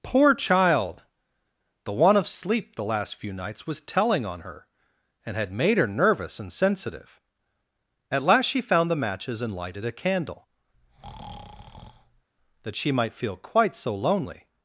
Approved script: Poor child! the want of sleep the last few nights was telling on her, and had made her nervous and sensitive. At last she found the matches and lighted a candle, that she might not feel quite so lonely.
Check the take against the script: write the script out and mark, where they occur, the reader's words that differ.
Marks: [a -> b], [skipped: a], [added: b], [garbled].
Poor child! the want of sleep the last few nights was telling on her, and had made her nervous and sensitive. At last she found the matches and lighted a candle, that she might [skipped: not] feel quite so lonely.